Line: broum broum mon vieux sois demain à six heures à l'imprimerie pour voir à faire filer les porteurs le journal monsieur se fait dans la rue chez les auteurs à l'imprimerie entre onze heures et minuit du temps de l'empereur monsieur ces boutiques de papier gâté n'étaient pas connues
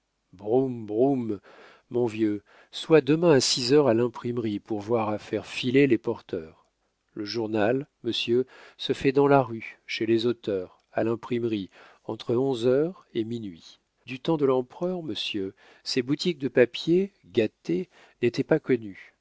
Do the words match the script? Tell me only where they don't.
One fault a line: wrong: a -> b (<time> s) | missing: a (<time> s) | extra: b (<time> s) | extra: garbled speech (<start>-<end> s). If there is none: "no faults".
no faults